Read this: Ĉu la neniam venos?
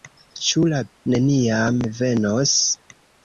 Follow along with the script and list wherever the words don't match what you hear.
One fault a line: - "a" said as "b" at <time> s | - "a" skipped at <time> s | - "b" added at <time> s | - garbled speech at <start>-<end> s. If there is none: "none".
none